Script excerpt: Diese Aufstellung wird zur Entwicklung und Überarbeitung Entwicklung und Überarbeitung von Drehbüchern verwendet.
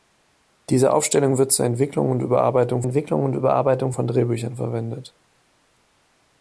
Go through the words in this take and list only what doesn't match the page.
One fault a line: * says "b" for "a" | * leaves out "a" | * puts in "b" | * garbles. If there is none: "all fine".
all fine